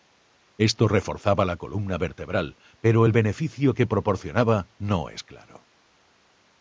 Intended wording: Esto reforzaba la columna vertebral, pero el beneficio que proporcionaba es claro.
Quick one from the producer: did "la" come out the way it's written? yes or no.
yes